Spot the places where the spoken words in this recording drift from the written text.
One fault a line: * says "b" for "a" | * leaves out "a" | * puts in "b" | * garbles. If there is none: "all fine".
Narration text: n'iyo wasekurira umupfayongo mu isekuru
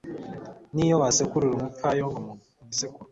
all fine